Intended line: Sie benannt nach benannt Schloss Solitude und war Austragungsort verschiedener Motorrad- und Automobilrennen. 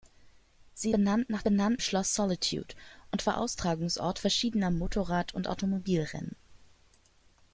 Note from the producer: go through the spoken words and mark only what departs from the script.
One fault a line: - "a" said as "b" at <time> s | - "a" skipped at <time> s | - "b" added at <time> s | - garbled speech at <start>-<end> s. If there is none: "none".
none